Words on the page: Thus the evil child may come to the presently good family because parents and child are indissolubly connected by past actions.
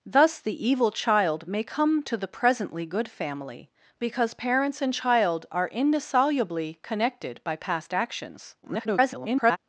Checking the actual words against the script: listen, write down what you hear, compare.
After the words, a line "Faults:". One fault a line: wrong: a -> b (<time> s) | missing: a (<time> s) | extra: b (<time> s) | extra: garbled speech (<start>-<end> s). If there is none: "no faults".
Thus the evil child may come to the presently good family because parents and child are indissolubly connected by past actions. [garbled]
Faults:
extra: garbled speech (8.6-9.6 s)